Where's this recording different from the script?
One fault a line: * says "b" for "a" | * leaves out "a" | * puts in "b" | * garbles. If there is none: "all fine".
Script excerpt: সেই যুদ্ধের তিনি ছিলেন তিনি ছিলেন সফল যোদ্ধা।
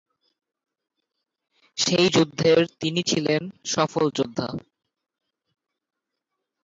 * leaves out "তিনি ছিলেন"